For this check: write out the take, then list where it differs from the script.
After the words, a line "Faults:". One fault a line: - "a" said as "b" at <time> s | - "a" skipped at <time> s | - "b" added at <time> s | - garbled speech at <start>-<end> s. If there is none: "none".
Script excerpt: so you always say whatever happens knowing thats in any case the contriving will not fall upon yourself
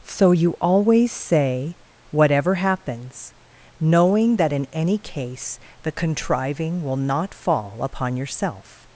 so you always say whatever happens knowing that in any case the contriving will not fall upon yourself
Faults:
- "thats" said as "that" at 4.4 s